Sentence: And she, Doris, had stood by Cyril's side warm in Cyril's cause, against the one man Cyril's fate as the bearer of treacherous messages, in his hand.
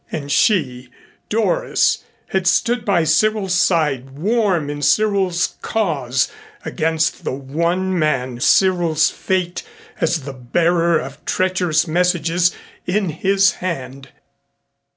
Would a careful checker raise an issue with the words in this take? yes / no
no